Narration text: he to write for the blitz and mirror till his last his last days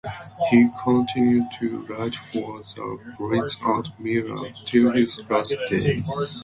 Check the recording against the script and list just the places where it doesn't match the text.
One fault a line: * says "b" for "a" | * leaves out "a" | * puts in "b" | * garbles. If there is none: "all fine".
* puts in "continued"
* leaves out "his last"